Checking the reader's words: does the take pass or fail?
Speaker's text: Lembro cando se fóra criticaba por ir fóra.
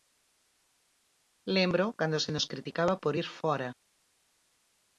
fail